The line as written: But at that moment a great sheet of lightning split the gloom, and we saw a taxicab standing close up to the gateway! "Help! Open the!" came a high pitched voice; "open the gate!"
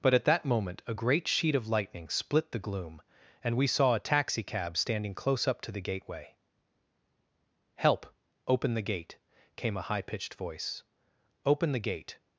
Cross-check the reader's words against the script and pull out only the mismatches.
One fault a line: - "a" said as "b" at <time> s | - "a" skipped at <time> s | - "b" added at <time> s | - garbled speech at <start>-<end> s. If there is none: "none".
- "gate" added at 8.8 s